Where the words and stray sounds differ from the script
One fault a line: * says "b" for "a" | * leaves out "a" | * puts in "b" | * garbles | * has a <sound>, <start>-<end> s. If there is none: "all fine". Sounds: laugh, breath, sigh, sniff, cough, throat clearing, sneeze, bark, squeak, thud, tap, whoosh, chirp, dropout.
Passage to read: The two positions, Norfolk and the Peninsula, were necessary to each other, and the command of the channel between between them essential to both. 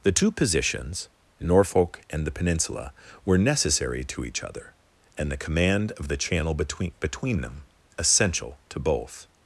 all fine